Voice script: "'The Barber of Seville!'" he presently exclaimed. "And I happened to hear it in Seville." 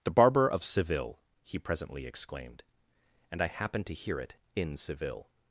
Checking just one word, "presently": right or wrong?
right